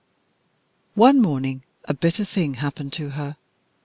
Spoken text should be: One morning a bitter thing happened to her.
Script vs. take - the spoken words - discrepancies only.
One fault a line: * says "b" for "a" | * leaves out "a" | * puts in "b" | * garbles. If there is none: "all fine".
all fine